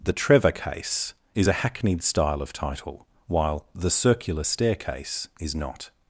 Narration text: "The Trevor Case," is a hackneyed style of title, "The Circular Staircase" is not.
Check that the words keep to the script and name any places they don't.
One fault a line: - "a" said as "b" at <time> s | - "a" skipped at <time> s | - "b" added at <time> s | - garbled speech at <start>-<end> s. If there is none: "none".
- "while" added at 3.3 s